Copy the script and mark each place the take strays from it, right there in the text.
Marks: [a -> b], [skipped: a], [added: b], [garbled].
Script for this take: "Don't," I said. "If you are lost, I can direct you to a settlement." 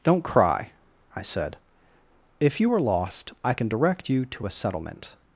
"Don't," [added: cry] I said. "If you are lost, I can direct you to a settlement."